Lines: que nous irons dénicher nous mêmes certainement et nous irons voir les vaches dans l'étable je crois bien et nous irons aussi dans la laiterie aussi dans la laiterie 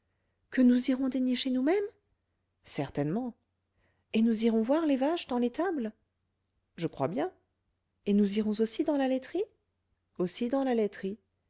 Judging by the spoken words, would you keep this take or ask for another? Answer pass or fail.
pass